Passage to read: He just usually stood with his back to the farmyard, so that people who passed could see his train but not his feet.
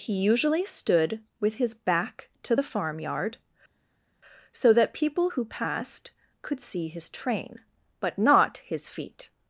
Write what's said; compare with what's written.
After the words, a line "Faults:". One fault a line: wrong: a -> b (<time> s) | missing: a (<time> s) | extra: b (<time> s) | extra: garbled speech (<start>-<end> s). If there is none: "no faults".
He usually stood with his back to the farmyard, so that people who passed could see his train but not his feet.
Faults:
missing: just (0.1 s)